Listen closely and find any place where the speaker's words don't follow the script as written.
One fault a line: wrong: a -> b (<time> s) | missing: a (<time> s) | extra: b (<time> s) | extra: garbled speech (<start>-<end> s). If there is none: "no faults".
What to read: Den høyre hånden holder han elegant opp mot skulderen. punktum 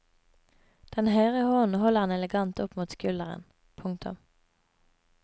no faults